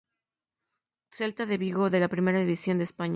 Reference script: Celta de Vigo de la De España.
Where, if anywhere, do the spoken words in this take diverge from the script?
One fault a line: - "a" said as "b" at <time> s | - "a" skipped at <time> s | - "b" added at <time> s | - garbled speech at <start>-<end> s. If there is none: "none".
- "Primera División" added at 2.1 s